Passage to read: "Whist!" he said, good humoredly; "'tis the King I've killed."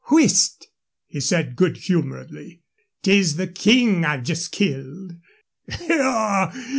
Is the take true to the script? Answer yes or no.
no